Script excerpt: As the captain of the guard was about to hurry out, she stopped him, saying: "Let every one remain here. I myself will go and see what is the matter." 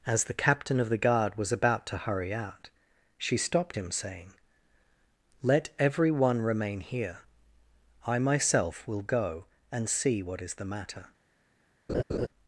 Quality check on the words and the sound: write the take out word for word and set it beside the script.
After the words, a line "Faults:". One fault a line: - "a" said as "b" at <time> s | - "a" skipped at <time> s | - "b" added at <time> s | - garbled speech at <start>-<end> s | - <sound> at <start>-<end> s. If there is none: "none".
As the captain of the guard was about to hurry out, she stopped him, saying: "Let every one remain here. I myself will go and see what is the matter."
Faults:
- laugh at 11.9-12.3 s